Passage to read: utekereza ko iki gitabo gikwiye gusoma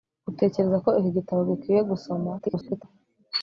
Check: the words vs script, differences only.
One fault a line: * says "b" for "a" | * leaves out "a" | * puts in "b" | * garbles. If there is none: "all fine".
* garbles